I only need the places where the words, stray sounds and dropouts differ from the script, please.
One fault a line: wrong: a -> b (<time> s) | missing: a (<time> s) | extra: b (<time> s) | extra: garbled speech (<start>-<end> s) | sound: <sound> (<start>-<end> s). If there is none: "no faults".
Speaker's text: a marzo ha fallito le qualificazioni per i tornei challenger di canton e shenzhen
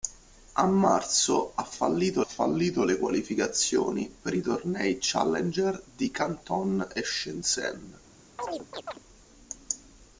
extra: fallito (2.2 s)
sound: chirp (8.4-9.0 s)